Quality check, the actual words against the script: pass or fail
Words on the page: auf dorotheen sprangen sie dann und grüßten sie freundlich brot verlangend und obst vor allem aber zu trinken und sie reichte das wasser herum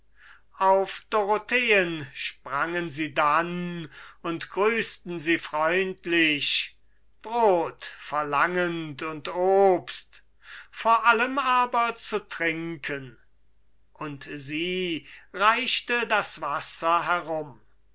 pass